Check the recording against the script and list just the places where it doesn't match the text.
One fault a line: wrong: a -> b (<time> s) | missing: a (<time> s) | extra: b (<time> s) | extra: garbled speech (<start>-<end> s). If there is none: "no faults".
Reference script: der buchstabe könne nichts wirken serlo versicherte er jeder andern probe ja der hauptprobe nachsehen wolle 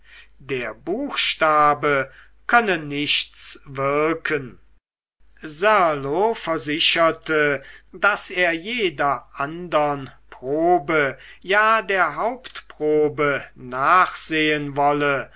extra: daß (7.9 s)